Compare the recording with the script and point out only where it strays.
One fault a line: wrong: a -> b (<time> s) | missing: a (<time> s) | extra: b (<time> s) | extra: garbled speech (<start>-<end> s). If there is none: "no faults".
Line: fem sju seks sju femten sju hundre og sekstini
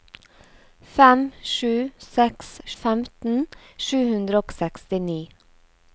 missing: sju (2.5 s)